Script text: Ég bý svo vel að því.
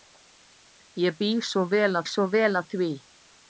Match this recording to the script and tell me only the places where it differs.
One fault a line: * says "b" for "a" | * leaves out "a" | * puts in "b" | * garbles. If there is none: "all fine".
* puts in "svo vel"